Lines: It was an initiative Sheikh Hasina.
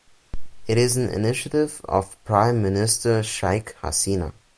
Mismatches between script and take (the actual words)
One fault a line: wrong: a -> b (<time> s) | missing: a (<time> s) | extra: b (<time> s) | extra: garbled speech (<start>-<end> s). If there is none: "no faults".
wrong: was -> is (0.8 s)
extra: of Prime Minister (1.9 s)